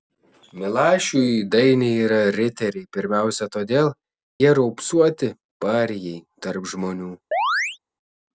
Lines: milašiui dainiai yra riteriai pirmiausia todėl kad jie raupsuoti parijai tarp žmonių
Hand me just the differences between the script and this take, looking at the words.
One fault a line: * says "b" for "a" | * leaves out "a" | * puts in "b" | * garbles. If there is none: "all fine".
* leaves out "kad"